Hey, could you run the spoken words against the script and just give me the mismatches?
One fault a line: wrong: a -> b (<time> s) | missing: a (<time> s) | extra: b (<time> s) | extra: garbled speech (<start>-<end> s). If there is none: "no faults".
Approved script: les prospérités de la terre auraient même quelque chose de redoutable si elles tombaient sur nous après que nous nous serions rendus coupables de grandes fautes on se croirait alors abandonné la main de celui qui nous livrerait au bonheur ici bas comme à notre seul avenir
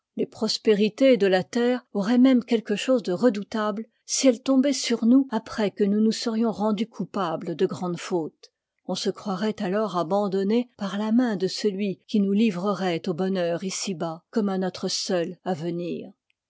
extra: par (10.8 s)